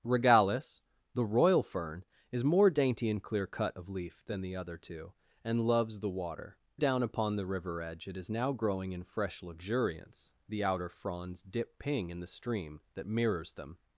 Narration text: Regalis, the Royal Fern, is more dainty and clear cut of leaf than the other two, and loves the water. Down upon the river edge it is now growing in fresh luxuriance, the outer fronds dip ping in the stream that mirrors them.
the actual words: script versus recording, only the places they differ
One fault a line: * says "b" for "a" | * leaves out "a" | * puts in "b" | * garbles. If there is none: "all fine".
all fine